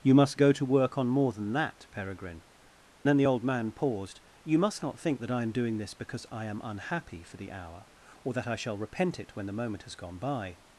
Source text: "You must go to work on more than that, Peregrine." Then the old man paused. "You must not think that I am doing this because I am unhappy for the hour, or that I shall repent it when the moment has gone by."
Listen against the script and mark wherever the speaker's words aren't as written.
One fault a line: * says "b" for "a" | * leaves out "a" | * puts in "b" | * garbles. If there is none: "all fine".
all fine